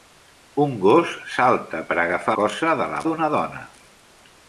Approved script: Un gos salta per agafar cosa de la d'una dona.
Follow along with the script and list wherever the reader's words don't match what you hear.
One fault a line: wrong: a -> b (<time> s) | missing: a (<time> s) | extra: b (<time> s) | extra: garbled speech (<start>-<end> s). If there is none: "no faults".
no faults